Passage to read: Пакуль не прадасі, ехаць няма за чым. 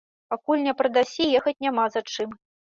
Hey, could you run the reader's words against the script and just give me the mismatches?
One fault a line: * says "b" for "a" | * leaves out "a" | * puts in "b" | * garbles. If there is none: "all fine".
all fine